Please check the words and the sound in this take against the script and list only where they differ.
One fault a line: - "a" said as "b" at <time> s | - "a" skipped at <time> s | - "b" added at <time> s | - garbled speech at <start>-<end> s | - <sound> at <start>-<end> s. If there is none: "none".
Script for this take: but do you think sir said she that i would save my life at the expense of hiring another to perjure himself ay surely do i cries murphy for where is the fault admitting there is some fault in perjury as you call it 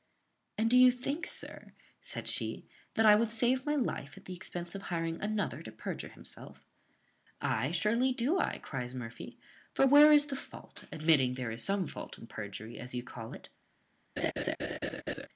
- "but" said as "and" at 0.6 s
- laugh at 14.2-15.3 s